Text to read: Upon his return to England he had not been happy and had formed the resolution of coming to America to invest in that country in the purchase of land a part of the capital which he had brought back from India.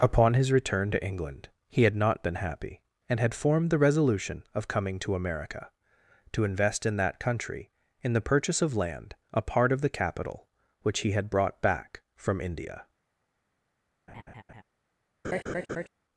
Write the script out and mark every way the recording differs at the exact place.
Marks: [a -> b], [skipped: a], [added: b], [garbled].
Upon his return to England he had not been happy and had formed the resolution of coming to America to invest in that country in the purchase of land a part of the capital which he had brought back from India.